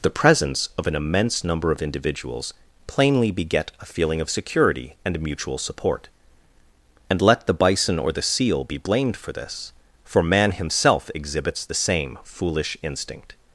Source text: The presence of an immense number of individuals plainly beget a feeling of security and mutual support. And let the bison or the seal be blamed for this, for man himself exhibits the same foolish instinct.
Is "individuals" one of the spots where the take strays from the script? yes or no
no